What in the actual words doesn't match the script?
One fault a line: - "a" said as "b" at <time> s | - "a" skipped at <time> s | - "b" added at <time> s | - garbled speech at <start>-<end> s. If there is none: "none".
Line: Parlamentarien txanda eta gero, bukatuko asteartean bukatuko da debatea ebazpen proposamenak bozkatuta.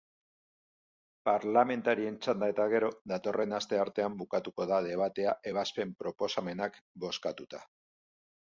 - "bukatuko" said as "datorren" at 3.1 s